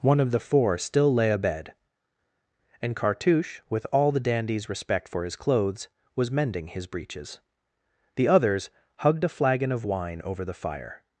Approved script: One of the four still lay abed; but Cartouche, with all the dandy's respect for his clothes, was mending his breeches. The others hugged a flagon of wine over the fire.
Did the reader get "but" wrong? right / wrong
wrong